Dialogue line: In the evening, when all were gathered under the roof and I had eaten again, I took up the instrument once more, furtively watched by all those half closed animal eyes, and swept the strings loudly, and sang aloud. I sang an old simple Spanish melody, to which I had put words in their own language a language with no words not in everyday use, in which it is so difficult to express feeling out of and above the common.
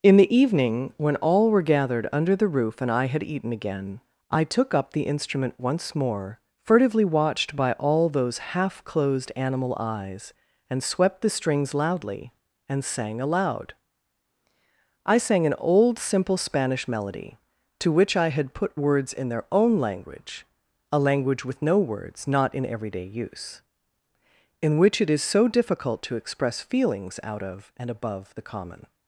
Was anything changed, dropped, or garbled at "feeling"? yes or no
yes